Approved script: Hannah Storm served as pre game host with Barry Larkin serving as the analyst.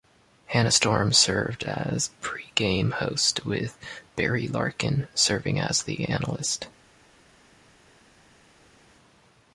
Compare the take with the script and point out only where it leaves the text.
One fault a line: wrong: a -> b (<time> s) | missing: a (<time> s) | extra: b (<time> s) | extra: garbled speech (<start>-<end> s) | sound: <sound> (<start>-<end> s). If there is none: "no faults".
no faults